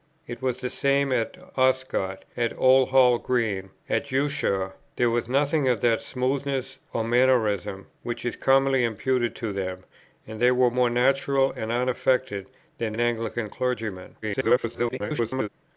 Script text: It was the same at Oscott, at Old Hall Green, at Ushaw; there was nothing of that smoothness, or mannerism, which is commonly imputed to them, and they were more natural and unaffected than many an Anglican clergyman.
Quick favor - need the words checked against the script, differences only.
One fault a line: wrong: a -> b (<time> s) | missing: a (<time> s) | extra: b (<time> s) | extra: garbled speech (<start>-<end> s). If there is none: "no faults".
missing: many (12.9 s)
extra: garbled speech (14.2-15.5 s)